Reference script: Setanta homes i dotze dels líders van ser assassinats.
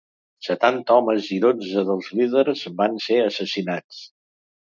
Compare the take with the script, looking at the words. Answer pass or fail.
pass